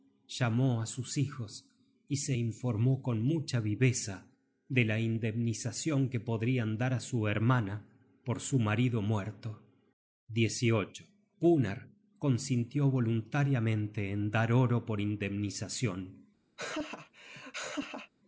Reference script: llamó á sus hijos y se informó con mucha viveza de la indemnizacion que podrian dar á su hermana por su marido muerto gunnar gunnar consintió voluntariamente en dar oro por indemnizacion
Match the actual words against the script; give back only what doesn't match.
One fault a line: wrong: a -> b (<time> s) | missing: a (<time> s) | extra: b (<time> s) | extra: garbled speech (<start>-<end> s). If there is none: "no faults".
missing: gunnar (11.9 s)